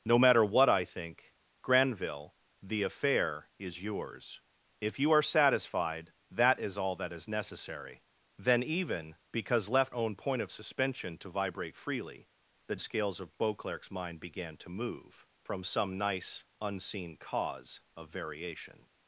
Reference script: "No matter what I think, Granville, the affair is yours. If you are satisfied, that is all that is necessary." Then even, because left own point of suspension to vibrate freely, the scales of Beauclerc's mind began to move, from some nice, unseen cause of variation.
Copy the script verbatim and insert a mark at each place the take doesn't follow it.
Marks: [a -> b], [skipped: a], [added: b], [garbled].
"No matter what I think, Granville, the affair is yours. If you are satisfied, that is all that is necessary." Then even, because left own point of suspension to vibrate freely, the scales of Beauclerc's mind began to move, from some nice, unseen cause of variation.